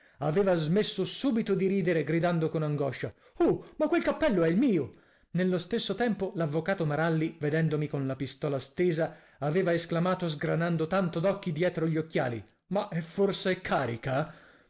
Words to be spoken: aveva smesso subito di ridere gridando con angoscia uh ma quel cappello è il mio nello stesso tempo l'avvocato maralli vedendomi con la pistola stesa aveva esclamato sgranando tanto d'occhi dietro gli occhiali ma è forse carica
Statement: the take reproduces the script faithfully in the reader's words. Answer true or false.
true